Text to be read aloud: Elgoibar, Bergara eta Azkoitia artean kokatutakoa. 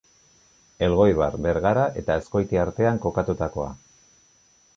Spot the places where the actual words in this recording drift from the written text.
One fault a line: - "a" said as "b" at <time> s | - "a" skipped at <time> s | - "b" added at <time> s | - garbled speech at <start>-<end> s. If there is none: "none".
none